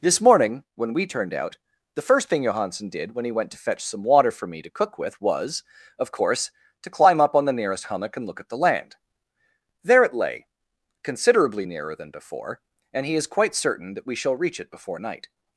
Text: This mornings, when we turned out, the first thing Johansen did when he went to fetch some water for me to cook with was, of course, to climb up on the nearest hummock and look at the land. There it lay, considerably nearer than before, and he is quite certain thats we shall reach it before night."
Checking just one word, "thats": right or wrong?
wrong